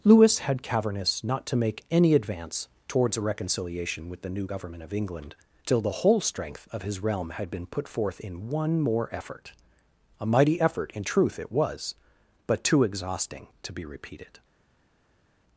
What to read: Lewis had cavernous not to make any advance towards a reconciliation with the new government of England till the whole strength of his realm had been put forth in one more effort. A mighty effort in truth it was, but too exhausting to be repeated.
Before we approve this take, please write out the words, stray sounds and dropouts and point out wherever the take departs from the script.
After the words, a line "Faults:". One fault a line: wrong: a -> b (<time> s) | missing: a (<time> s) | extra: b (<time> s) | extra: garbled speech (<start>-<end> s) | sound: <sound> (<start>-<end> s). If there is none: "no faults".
Lewis had cavernous not to make any advance towards a reconciliation with the new government of England till the whole strength of his realm had been put forth in one more effort. A mighty effort in truth it was, but too exhausting to be repeated.
Faults:
no faults